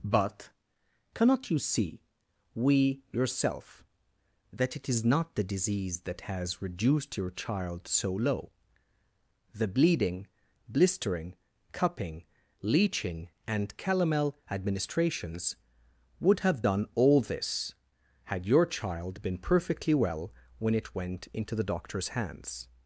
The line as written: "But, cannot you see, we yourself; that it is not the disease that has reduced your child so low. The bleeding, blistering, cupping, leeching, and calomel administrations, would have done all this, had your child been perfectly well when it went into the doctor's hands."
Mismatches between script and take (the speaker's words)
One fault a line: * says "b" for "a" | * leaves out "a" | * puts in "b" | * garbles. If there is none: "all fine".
all fine